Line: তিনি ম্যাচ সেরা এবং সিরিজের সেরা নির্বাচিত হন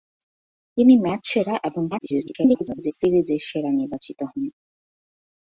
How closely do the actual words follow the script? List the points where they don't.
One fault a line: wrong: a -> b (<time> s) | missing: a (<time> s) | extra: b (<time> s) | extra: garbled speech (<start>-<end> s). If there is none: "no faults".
extra: garbled speech (1.9-2.9 s)